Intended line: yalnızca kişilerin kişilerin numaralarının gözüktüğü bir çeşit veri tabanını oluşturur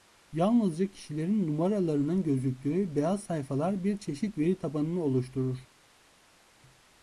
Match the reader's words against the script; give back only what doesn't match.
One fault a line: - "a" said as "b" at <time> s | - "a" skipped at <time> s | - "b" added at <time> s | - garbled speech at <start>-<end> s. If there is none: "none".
- "kişilerin" skipped at 1.5 s
- "beyaz sayfalar" added at 3.0 s